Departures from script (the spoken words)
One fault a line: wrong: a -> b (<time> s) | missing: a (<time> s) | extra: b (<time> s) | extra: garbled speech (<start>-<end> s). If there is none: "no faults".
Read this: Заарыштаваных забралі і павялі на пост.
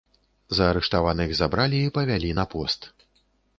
no faults